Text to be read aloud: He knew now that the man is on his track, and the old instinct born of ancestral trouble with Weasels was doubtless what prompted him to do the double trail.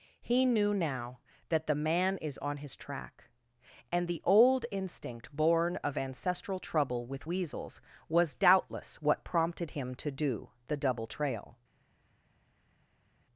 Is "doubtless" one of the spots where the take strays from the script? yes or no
no